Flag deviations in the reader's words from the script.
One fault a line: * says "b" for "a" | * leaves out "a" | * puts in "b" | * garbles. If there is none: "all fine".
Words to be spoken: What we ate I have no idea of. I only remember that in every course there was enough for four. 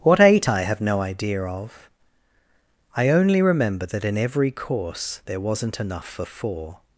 * leaves out "we"
* says "wasn't" for "was"